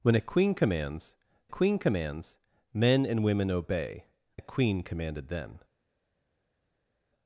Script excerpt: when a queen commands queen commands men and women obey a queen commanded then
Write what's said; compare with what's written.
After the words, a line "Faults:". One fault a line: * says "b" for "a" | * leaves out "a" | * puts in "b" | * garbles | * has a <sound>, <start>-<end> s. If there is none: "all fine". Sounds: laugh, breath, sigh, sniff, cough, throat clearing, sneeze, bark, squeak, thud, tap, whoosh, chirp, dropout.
when a queen commands queen commands men and women obey a queen commanded then
Faults:
all fine